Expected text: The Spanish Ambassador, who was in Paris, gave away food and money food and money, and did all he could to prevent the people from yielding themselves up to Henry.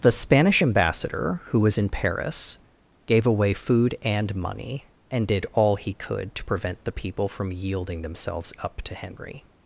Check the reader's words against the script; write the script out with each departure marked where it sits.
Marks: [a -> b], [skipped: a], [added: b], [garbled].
The Spanish Ambassador, who was in Paris, gave away food and money [skipped: food and money,] and did all he could to prevent the people from yielding themselves up to Henry.